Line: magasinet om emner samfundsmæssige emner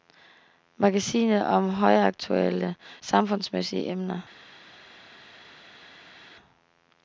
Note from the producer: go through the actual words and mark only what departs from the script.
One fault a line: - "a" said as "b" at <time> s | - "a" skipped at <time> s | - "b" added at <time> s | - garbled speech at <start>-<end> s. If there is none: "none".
- "emner" said as "højaktuelle" at 1.7 s